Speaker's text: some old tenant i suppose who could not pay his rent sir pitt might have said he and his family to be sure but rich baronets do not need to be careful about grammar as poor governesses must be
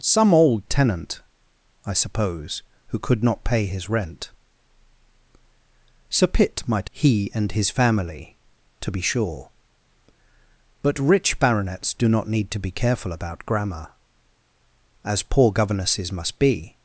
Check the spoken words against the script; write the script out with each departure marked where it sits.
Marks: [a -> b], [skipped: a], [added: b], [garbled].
some old tenant i suppose who could not pay his rent sir pitt might [skipped: have said] he and his family to be sure but rich baronets do not need to be careful about grammar as poor governesses must be